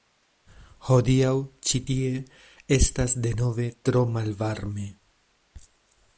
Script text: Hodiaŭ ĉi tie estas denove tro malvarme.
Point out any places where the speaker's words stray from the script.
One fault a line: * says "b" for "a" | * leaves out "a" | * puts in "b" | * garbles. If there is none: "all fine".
all fine